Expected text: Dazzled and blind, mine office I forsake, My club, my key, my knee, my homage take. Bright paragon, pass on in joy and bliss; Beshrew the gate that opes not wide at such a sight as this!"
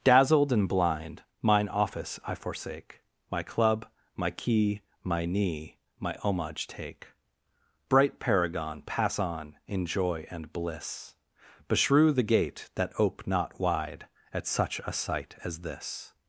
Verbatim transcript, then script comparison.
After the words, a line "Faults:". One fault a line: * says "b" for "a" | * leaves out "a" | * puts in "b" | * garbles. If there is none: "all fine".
Dazzled and blind, mine office I forsake, My club, my key, my knee, my homage take. Bright paragon, pass on in joy and bliss; Beshrew the gate that ope not wide at such a sight as this!"
Faults:
* says "ope" for "opes"